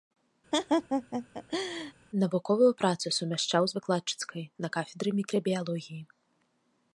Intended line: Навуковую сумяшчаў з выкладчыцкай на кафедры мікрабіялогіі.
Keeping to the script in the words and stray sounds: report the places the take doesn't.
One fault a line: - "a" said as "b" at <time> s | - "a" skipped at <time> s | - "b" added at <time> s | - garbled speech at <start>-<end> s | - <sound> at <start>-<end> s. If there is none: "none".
- laugh at 0.5-1.9 s
- "працу" added at 2.8 s